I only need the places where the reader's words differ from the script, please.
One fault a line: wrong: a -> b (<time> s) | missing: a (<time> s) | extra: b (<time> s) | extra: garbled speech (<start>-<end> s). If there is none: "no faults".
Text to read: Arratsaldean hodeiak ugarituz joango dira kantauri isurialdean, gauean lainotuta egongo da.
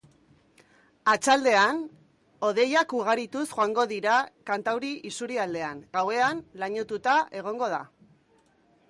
no faults